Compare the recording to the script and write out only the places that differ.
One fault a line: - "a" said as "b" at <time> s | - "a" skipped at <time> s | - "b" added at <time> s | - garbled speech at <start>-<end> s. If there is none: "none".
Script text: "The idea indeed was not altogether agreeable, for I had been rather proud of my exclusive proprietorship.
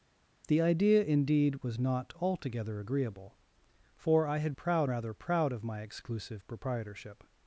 - "been" said as "proud" at 4.5 s